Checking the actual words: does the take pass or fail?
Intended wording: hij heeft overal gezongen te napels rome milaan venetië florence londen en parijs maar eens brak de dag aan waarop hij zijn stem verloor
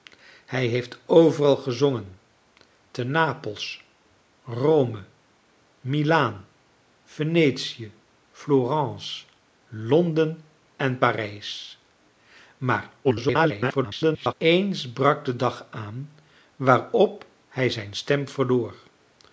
fail